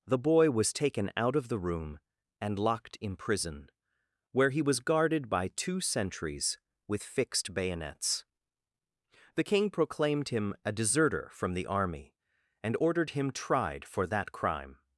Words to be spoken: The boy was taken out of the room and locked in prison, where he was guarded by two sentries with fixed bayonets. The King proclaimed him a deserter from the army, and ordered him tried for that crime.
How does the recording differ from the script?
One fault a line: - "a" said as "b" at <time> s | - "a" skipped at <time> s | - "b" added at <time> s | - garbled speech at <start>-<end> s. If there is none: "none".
none